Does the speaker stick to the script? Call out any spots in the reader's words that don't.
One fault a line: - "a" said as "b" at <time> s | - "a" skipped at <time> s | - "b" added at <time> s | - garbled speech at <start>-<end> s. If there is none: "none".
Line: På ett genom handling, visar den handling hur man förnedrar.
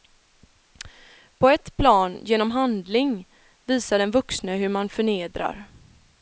- "plan" added at 1.8 s
- "handling" said as "vuxne" at 4.1 s